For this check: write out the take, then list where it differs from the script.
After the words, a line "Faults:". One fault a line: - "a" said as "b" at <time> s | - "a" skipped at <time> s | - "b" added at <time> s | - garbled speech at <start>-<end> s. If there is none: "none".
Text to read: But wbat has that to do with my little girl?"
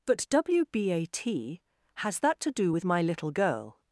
But wbat has that to do with my little girl?"
Faults:
none